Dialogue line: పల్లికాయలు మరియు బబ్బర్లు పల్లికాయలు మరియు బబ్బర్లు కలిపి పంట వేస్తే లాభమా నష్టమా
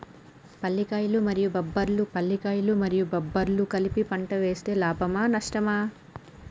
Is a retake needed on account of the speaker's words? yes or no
no